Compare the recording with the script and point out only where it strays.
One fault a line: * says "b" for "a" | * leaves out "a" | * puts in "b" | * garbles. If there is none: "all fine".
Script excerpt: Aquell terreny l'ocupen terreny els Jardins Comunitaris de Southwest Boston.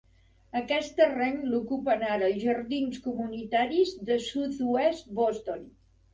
* says "Aquest" for "Aquell"
* says "ara" for "terreny"